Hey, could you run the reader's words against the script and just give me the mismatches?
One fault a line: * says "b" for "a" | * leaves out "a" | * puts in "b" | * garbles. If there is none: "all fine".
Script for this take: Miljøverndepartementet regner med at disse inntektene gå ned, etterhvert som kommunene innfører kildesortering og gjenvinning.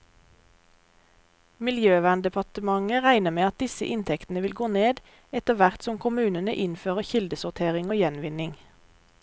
* puts in "vil"